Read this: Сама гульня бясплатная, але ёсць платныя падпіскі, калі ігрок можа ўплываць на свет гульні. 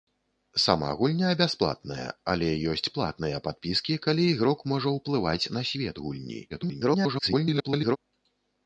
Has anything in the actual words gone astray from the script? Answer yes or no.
yes